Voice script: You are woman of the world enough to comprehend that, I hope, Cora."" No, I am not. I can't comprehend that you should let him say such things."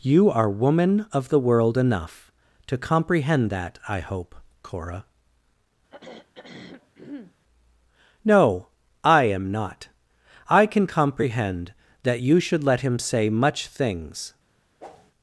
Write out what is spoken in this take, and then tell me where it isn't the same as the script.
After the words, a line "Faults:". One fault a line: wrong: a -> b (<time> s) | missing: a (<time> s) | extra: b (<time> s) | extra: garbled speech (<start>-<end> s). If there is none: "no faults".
You are woman of the world enough to comprehend that, I hope, Cora."" No, I am not. I can comprehend that you should let him say much things."
Faults:
wrong: can't -> can (10.6 s)
wrong: such -> much (13.3 s)